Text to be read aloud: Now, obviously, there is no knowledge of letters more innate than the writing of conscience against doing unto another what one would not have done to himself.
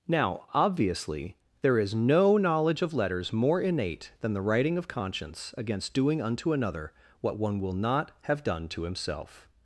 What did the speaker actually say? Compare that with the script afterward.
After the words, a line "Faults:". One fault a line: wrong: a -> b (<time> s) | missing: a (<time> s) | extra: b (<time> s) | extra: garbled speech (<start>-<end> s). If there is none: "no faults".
Now, obviously, there is no knowledge of letters more innate than the writing of conscience against doing unto another what one will not have done to himself.
Faults:
wrong: would -> will (7.6 s)